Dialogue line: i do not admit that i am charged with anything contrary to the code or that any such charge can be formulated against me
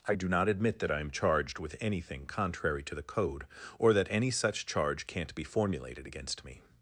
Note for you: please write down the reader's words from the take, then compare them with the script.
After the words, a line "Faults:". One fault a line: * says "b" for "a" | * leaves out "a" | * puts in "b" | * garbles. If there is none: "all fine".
i do not admit that i am charged with anything contrary to the code or that any such charge can't be formulated against me
Faults:
* says "can't" for "can"